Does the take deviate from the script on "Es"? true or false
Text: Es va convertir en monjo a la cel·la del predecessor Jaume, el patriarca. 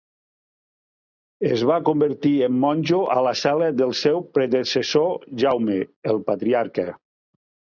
false